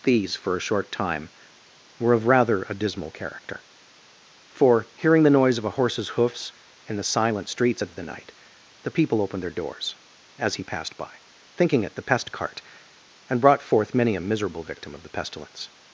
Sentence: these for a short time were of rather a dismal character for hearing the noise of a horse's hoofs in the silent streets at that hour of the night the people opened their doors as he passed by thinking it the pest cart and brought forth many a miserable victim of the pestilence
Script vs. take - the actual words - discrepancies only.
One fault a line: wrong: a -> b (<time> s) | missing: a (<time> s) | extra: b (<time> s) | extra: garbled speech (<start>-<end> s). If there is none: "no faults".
missing: that hour (7.9 s)